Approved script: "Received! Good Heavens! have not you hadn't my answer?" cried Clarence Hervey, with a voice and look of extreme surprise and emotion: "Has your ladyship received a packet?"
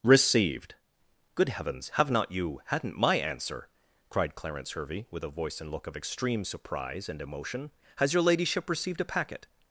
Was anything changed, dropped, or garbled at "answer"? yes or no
no